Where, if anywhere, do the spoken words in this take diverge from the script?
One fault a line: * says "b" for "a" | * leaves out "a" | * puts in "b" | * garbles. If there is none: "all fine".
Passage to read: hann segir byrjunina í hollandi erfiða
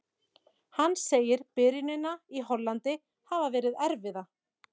* puts in "hafa verið"